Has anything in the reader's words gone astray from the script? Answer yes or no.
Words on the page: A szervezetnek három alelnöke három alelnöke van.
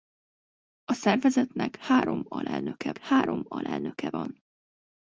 no